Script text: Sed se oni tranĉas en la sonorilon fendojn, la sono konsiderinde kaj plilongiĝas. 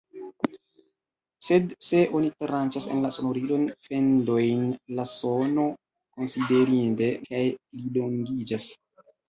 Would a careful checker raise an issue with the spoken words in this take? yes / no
no